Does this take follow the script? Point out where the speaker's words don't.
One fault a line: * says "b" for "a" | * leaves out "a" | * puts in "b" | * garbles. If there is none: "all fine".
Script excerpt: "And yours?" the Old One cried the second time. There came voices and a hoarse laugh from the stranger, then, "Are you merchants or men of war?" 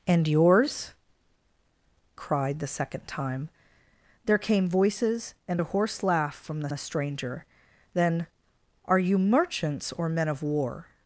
* leaves out "the Old One"
* puts in "the"